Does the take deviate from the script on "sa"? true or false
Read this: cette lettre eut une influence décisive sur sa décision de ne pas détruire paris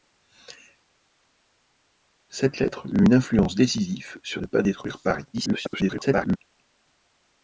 true